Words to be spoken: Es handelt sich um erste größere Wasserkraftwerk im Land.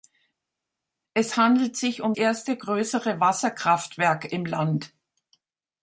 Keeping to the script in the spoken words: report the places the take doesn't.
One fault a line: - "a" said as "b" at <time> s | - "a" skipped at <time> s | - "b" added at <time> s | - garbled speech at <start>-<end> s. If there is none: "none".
none